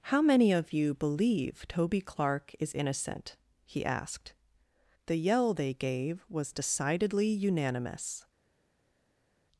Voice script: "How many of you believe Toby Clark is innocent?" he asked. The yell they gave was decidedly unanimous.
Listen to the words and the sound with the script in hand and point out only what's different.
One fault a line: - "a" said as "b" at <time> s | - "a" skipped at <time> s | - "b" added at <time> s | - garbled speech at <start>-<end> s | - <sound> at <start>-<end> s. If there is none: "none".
none